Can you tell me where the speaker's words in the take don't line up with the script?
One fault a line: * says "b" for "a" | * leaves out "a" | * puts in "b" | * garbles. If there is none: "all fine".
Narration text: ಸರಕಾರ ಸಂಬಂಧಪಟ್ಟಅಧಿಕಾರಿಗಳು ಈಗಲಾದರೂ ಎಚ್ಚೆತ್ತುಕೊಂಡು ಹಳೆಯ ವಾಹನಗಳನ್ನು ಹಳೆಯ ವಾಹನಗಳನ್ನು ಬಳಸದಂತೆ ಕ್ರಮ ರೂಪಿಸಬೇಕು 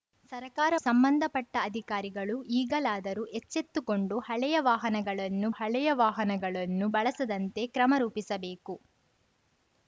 all fine